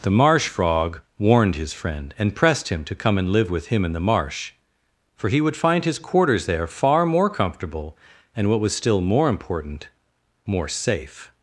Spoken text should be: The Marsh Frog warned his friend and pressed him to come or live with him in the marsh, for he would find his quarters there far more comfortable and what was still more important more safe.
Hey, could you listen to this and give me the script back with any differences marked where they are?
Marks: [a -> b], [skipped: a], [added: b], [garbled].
The Marsh Frog warned his friend and pressed him to come [or -> and] live with him in the marsh, for he would find his quarters there far more comfortable and what was still more important more safe.